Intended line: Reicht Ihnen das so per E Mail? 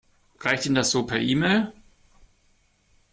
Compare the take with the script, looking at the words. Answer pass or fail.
pass